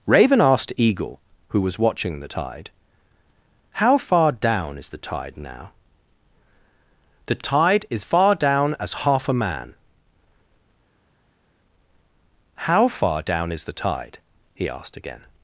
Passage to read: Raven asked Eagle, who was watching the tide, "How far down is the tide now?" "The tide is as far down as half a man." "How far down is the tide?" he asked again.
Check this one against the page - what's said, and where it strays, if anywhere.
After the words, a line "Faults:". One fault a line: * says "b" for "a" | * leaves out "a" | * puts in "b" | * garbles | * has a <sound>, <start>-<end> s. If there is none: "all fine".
Raven asked Eagle, who was watching the tide, "How far down is the tide now?" "The tide is far down as half a man." "How far down is the tide?" he asked again.
Faults:
* leaves out "as"